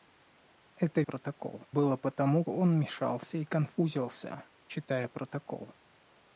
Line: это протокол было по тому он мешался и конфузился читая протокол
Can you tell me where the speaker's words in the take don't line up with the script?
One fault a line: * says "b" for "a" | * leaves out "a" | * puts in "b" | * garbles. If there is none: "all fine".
all fine